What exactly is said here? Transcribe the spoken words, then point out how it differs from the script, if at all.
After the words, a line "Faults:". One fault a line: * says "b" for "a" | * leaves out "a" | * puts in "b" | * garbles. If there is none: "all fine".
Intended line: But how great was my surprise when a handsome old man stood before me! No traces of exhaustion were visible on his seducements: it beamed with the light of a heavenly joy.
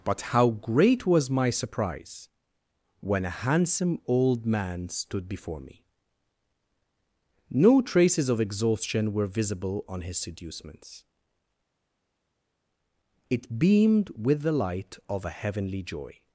But how great was my surprise when a handsome old man stood before me! No traces of exhaustion were visible on his seducements: it beamed with the light of a heavenly joy.
Faults:
all fine